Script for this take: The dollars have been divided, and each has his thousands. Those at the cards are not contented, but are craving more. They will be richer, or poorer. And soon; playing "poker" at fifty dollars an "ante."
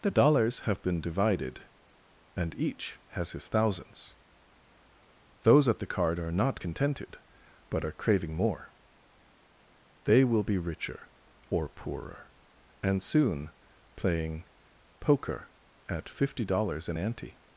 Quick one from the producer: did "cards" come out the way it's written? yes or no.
no